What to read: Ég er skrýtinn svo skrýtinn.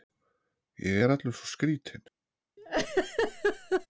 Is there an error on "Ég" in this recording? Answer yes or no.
no